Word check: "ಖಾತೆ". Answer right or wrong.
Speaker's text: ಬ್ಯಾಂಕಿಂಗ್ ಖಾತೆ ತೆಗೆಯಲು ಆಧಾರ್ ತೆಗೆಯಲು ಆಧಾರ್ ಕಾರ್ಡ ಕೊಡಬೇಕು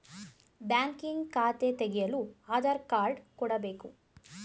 right